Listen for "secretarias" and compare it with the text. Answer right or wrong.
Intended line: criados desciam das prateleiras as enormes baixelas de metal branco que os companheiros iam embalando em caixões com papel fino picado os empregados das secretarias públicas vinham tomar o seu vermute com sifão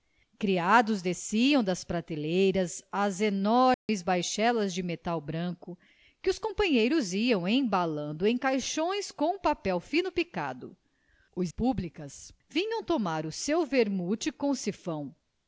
wrong